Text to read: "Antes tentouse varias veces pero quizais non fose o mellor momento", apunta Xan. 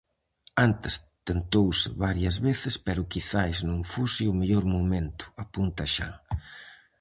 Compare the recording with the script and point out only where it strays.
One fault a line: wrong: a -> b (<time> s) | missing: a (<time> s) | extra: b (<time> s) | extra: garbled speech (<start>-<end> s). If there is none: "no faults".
no faults